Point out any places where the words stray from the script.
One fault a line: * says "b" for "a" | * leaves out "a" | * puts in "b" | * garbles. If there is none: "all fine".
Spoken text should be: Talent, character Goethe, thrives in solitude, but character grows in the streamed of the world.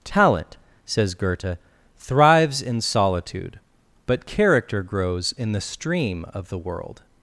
* says "says" for "character"
* says "stream" for "streamed"